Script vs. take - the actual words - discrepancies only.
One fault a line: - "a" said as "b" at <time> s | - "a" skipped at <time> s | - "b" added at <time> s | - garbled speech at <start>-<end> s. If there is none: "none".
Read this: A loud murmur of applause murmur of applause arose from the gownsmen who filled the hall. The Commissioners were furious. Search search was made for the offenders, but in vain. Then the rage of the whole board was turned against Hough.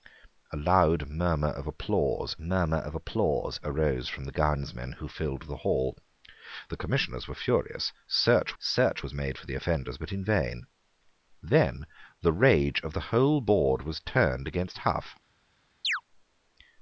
none